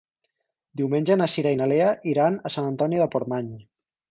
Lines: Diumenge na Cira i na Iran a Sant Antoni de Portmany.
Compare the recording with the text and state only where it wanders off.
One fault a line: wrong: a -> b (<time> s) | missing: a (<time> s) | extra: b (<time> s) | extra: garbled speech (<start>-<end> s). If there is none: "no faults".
extra: Lea (1.7 s)